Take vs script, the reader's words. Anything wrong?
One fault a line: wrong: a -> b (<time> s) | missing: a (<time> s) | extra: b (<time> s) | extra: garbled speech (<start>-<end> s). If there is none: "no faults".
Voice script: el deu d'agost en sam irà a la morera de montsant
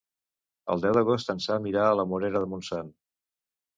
no faults